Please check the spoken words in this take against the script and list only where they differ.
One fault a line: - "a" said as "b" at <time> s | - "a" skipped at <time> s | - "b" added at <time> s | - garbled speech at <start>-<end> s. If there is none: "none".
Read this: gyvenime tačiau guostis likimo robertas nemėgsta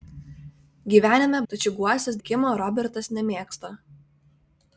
none